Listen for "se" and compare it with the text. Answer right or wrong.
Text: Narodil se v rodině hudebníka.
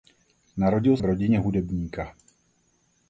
wrong